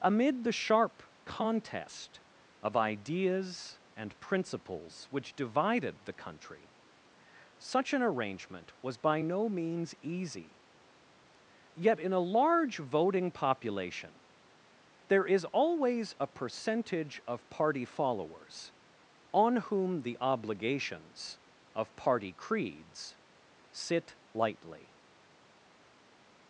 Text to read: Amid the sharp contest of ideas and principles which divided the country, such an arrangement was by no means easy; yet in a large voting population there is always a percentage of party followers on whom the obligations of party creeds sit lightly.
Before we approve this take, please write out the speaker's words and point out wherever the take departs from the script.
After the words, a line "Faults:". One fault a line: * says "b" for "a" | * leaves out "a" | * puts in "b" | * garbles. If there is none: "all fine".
Amid the sharp contest of ideas and principles which divided the country, such an arrangement was by no means easy; yet in a large voting population there is always a percentage of party followers on whom the obligations of party creeds sit lightly.
Faults:
all fine